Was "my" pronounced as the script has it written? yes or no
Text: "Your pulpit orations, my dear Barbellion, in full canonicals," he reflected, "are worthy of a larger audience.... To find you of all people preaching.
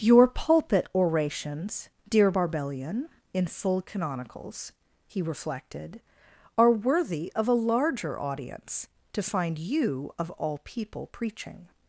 no